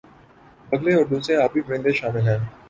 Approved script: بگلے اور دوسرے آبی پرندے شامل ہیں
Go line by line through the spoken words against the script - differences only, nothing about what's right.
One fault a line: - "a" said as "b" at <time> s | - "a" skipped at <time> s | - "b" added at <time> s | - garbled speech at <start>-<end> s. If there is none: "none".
none